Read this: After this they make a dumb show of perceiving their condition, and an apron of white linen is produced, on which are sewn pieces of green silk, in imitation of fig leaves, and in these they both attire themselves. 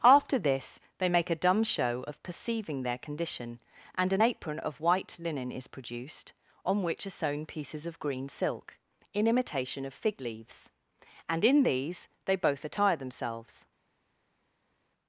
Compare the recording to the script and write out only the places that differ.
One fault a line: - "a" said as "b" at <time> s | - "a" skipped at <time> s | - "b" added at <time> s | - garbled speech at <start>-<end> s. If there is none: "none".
none